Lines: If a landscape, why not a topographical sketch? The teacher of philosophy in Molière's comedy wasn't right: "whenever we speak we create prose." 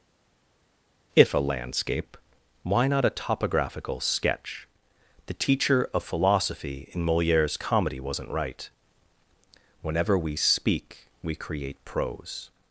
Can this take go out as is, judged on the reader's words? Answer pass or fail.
pass